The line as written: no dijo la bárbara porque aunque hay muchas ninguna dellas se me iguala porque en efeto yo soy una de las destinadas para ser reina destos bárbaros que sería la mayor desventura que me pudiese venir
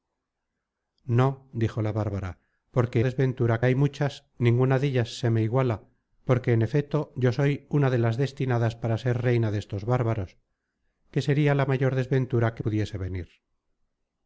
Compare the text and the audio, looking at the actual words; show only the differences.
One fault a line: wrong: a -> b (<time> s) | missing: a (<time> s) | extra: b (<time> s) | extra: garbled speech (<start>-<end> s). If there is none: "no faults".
wrong: aunque -> desventura (3.0 s)
missing: me (12.6 s)